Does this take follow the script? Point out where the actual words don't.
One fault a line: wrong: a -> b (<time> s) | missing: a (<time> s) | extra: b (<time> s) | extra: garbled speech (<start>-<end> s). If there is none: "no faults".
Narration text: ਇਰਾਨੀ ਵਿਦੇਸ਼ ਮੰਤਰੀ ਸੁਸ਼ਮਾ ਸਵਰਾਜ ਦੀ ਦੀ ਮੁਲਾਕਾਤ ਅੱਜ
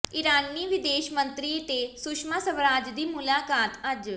extra: ਤੇ (1.6 s)
missing: ਦੀ (3.0 s)